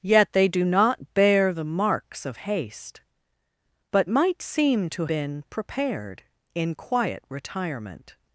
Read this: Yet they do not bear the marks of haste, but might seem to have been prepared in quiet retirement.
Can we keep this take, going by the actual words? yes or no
no